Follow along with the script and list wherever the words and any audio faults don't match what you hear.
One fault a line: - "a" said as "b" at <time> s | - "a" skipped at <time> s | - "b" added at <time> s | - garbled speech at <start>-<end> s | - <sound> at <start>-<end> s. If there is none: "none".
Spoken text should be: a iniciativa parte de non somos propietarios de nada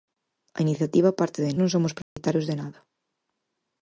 - dropout at 2.0-2.2 s